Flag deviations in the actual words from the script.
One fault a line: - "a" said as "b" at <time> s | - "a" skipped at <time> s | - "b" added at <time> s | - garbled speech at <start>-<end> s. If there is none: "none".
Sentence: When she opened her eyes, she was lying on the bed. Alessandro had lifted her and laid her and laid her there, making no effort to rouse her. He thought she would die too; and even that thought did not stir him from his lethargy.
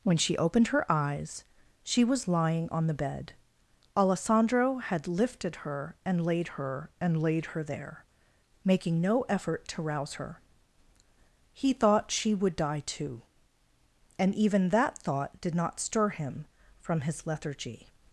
none